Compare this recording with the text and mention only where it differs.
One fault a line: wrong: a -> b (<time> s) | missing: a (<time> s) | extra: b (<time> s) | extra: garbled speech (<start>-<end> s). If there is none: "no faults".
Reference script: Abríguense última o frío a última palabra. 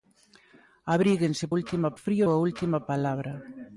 no faults